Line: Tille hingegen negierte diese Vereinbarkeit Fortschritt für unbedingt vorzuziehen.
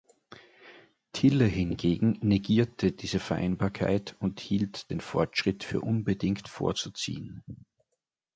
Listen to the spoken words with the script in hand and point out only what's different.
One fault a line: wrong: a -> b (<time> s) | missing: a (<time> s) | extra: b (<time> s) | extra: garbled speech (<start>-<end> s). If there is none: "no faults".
extra: und hielt den (4.2 s)